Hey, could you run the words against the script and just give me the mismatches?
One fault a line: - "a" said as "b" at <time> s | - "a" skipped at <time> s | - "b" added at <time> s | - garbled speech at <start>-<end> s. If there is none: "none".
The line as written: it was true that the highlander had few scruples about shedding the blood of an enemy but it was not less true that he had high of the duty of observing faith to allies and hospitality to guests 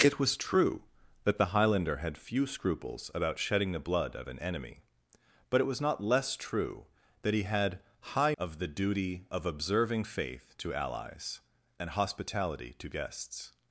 none